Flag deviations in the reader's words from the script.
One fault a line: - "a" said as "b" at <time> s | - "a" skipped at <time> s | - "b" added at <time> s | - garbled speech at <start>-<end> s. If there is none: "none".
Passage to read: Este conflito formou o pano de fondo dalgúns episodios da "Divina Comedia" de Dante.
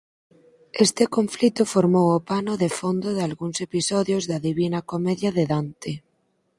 none